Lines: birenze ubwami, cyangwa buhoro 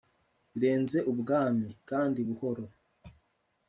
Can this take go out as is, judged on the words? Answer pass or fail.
fail